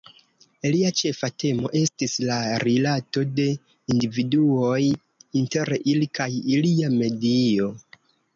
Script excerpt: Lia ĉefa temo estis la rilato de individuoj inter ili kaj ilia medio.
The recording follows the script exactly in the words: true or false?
true